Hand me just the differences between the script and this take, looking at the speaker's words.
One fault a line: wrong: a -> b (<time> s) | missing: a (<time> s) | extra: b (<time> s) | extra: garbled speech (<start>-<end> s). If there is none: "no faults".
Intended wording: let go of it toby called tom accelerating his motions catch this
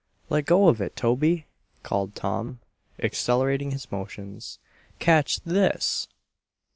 no faults